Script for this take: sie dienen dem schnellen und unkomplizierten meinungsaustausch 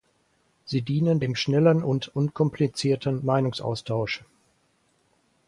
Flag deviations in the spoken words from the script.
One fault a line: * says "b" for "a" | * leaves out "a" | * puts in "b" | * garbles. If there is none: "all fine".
all fine